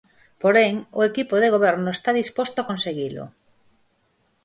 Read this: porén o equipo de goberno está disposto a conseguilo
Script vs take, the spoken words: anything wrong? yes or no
no